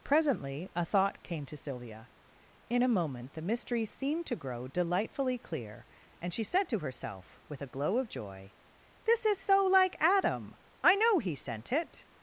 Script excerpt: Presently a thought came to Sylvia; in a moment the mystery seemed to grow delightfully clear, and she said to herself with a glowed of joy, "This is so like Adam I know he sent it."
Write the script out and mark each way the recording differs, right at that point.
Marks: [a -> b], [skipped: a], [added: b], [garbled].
Presently a thought came to Sylvia; in a moment the mystery seemed to grow delightfully clear, and she said to herself with a [glowed -> glow] of joy, "This is so like Adam I know he sent it."